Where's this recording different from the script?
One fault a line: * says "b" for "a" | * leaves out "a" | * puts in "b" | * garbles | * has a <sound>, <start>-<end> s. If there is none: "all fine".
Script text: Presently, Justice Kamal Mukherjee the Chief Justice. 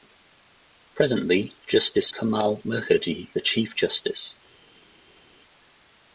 all fine